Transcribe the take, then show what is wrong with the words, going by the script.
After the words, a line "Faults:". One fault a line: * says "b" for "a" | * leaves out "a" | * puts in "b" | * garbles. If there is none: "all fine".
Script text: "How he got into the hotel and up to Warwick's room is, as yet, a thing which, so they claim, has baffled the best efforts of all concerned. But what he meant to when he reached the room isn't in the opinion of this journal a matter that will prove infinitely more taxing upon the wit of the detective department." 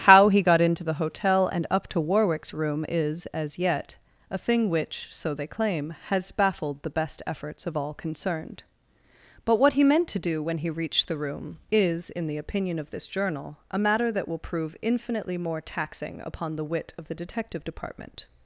"How he got into the hotel and up to Warwick's room is, as yet, a thing which, so they claim, has baffled the best efforts of all concerned. But what he meant to do when he reached the room is in the opinion of this journal a matter that will prove infinitely more taxing upon the wit of the detective department."
Faults:
* puts in "do"
* says "is" for "isn't"